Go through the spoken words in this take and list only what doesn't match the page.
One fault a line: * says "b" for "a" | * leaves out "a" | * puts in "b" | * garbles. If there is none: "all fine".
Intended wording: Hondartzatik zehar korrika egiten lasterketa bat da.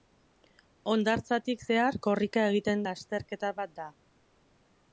all fine